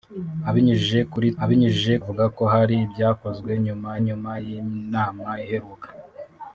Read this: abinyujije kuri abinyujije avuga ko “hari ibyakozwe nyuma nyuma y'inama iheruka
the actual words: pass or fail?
pass